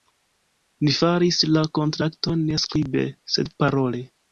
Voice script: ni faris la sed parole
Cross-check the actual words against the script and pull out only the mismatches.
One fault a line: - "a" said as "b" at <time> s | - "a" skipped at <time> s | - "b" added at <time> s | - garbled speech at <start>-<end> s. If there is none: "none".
- "kontrakton ne skribe" added at 1.8 s